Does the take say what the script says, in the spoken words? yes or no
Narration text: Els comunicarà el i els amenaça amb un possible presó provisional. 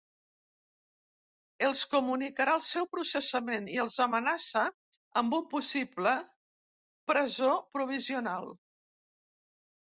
no